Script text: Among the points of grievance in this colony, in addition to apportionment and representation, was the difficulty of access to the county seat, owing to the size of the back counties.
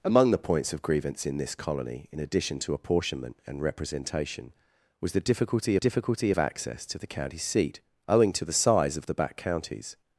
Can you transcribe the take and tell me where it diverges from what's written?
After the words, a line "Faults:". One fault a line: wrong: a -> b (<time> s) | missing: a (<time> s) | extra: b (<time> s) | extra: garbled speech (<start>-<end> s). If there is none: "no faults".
Among the points of grievance in this colony, in addition to apportionment and representation, was the difficulty difficulty of access to the county seat, owing to the size of the back counties.
Faults:
extra: difficulty (5.8 s)